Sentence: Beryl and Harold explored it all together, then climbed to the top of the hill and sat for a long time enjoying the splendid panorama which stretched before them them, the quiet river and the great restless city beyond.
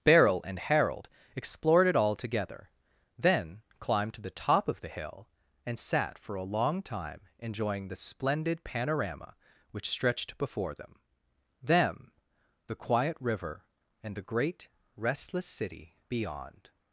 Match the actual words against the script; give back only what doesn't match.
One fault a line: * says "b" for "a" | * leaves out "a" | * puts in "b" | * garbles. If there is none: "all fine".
all fine